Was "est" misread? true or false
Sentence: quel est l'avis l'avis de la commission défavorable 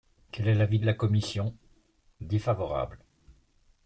false